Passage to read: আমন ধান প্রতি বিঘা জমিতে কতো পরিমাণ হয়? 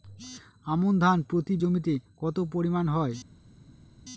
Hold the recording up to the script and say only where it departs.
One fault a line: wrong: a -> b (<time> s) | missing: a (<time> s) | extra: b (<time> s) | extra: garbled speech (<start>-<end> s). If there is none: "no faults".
missing: বিঘা (1.5 s)